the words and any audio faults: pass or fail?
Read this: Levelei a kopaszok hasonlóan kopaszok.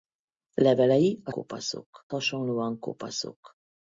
pass